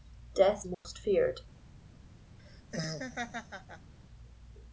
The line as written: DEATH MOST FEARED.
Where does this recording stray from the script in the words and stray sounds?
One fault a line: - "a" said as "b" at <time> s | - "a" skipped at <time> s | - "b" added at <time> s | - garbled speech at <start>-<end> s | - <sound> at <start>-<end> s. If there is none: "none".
- dropout at 0.7-0.8 s
- laugh at 2.4-3.9 s